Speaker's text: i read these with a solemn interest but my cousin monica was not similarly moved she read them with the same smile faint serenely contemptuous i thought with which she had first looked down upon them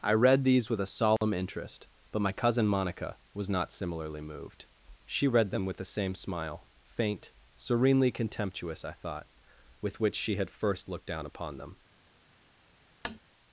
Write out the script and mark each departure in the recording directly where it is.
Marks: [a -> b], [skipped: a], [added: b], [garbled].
i read these with a solemn interest but my cousin monica was not similarly moved she read them with the same smile faint serenely contemptuous i thought with which she had first looked down upon them